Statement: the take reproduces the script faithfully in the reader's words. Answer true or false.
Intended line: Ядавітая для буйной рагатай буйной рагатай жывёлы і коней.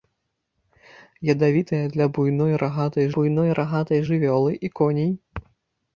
true